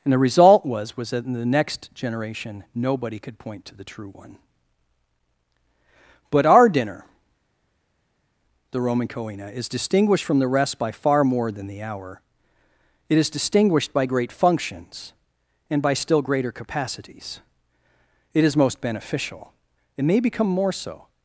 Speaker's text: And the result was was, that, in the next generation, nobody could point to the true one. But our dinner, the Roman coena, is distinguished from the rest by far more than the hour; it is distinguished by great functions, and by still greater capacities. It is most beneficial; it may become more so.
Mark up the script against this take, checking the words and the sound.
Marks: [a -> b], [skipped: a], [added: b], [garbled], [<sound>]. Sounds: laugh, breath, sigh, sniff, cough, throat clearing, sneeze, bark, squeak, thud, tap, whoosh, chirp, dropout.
And the result was was, that, in the next generation, nobody could point to the true one. But our dinner, the Roman coena, is distinguished from the rest by far more than the hour; it is distinguished by great functions, and by still greater capacities. It is most beneficial; it may become more so.